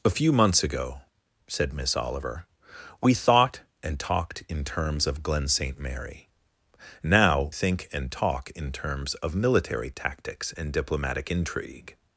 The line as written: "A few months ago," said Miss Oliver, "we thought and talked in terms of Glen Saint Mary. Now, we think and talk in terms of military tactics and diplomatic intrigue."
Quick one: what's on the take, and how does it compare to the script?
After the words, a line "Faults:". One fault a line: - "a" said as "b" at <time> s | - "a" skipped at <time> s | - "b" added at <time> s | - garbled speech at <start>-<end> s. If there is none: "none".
"A few months ago," said Miss Oliver, "we thought and talked in terms of Glen Saint Mary. Now, think and talk in terms of military tactics and diplomatic intrigue."
Faults:
- "we" skipped at 7.5 s